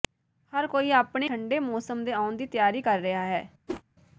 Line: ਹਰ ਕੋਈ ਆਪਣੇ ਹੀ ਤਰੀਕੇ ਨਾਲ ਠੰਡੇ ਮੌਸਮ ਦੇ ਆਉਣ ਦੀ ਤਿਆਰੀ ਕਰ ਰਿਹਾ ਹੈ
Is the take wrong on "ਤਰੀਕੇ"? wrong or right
wrong